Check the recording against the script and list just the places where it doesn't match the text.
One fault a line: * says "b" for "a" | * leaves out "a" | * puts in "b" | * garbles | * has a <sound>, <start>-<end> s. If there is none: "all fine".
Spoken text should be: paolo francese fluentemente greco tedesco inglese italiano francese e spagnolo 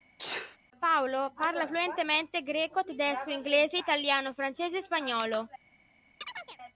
* has a sneeze, 0.2-0.6 s
* says "parla" for "francese"
* has a chirp, 6.2-6.6 s